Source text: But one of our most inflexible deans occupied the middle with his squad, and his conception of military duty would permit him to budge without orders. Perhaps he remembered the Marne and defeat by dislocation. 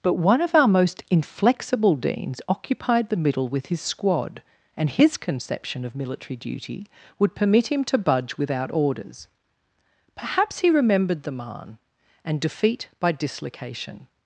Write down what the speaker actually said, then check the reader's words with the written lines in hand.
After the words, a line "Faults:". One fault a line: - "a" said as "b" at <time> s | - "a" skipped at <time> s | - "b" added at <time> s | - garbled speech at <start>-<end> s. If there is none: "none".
But one of our most inflexible deans occupied the middle with his squad, and his conception of military duty would permit him to budge without orders. Perhaps he remembered the Marne and defeat by dislocation.
Faults:
none